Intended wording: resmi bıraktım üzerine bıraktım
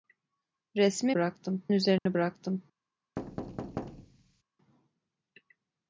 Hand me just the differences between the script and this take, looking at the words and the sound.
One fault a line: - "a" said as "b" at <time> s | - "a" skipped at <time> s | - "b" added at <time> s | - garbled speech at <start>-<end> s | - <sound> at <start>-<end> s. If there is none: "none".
- dropout at 2.0-2.1 s
- thud at 3.2-4.4 s